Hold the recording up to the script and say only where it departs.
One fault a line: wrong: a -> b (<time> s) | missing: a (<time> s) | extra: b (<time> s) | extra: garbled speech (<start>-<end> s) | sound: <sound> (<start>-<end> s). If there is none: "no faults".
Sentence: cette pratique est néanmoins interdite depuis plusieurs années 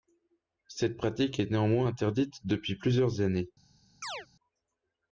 sound: chirp (4.0-4.3 s)